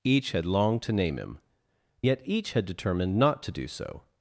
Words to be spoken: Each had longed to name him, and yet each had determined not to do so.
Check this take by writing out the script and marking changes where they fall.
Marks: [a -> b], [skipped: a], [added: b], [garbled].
Each had longed to name him, [skipped: and] yet each had determined not to do so.